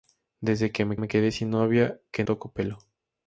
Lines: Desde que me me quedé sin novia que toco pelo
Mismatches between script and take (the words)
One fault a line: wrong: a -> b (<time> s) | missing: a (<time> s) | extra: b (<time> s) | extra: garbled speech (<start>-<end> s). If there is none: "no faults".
no faults